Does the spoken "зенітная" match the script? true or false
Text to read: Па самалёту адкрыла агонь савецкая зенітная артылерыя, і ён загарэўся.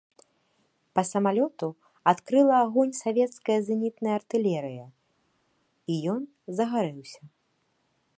true